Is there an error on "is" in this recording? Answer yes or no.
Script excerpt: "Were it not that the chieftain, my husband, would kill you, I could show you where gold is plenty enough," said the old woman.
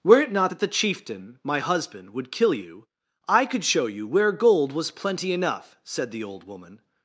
yes